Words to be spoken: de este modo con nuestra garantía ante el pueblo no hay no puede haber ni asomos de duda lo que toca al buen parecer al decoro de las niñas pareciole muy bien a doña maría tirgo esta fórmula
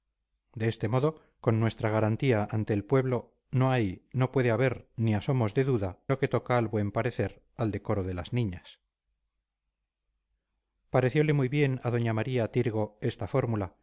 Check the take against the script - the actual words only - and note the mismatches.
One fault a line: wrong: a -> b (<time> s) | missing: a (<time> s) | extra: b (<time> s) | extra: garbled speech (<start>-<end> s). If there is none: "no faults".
no faults